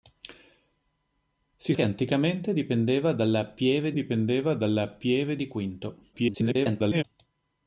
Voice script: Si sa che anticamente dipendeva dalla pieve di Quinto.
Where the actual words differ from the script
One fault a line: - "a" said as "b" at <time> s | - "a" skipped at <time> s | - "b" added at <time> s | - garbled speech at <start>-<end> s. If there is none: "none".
- "sa" skipped at 1.8 s
- "dipendeva dalla pieve" added at 3.9 s
- garbled speech at 6.1-7.0 s